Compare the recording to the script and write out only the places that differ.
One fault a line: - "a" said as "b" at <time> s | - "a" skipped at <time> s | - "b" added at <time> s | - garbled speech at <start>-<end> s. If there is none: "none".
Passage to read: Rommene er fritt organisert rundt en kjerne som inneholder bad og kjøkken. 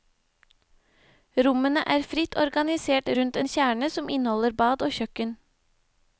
none